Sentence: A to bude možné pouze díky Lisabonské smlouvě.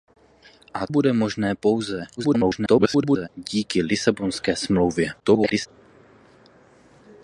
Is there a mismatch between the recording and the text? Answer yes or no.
yes